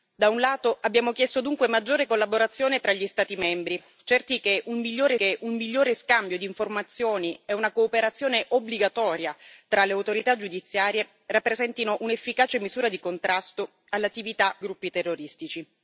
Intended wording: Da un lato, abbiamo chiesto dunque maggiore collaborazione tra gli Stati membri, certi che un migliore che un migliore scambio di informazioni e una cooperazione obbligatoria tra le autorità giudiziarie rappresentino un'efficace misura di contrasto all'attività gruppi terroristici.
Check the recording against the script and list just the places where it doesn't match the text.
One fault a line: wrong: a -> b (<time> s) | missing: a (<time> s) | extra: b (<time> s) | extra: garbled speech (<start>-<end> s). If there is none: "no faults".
no faults